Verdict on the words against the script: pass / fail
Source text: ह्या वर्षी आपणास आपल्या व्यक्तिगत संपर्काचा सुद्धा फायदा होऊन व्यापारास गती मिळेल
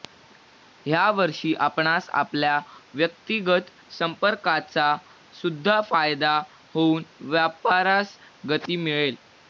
pass